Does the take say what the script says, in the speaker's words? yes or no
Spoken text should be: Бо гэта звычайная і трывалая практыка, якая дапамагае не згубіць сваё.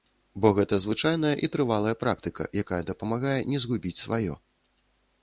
yes